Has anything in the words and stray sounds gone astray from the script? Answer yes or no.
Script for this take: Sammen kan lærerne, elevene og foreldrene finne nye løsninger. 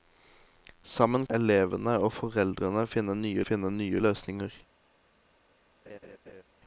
yes